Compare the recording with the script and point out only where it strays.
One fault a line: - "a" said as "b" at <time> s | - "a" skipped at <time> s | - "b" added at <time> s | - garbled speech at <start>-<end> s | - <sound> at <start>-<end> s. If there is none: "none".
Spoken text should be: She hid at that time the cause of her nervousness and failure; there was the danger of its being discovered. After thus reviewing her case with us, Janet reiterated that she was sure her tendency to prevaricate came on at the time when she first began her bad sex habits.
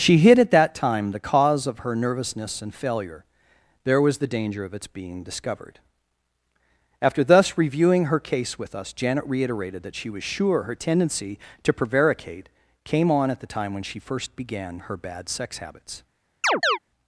- chirp at 16.4-16.8 s